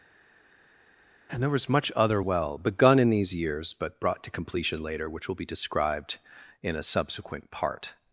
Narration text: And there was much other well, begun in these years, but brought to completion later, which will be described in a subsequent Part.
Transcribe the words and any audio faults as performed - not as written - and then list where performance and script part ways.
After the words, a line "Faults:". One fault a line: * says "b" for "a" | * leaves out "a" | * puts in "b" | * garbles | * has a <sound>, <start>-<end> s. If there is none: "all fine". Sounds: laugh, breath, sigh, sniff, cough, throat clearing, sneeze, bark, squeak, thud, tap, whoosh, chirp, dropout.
And there was much other well, begun in these years, but brought to completion later, which will be described in a subsequent Part.
Faults:
all fine